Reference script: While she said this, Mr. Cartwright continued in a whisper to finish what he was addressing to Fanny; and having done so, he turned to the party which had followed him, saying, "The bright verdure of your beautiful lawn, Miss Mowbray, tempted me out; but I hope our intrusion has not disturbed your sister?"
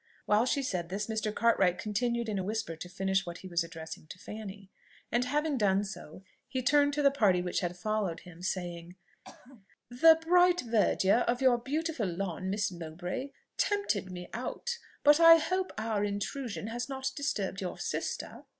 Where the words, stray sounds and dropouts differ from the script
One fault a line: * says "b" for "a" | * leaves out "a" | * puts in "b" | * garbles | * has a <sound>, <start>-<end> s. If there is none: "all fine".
* has a throat clearing, 9.2-9.7 s